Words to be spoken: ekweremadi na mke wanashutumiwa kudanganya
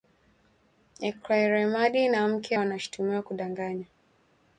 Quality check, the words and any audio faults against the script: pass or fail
pass